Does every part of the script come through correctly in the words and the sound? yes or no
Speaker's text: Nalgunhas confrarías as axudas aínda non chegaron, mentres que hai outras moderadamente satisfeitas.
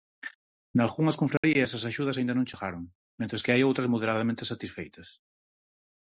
no